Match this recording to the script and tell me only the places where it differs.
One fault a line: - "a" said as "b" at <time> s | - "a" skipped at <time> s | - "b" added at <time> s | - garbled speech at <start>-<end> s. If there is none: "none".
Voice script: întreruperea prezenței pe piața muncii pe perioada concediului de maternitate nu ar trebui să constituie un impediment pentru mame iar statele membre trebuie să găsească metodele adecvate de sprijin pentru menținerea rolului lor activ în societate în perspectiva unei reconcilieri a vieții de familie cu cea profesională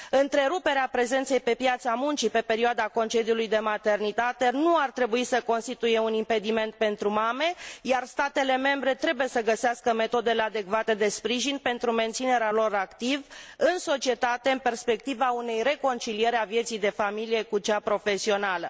- "rolului" skipped at 12.5 s